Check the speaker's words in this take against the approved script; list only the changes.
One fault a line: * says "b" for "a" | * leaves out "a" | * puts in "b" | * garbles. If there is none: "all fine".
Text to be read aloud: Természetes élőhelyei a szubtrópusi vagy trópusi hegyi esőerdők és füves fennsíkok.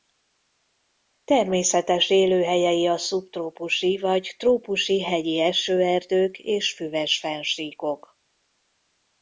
all fine